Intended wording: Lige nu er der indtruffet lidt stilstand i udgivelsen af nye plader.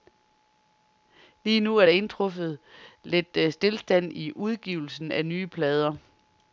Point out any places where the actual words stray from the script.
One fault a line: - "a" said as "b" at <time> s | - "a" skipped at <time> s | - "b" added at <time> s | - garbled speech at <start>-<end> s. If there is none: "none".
none